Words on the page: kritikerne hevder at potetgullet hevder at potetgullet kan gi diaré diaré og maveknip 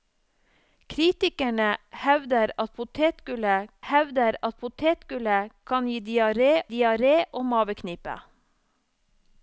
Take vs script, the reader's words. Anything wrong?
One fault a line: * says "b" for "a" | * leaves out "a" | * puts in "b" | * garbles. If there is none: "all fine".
all fine